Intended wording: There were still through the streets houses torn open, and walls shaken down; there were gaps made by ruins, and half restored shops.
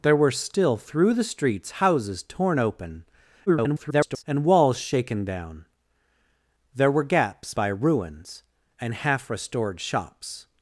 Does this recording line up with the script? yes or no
no